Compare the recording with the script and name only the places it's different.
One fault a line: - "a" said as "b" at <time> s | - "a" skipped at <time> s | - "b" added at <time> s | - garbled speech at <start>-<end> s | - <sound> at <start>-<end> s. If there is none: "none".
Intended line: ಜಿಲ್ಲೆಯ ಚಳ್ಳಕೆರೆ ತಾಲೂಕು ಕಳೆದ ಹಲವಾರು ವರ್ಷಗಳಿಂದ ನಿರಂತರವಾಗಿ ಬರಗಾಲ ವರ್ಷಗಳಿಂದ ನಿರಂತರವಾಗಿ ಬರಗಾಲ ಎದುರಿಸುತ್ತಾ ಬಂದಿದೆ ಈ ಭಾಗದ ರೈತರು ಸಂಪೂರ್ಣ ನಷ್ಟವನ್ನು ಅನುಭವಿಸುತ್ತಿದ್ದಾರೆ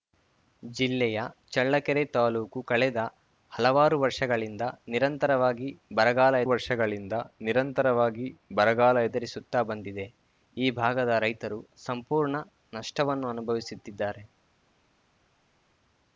none